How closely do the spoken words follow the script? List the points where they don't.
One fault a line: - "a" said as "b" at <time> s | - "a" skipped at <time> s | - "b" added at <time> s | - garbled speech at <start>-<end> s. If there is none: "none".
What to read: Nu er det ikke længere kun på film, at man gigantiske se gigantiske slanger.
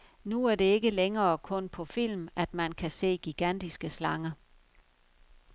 - "gigantiske" said as "kan" at 2.7 s